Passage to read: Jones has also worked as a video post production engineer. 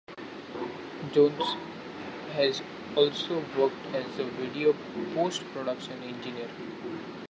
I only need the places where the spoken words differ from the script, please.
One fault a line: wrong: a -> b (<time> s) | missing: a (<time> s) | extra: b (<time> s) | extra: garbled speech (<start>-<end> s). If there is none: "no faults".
no faults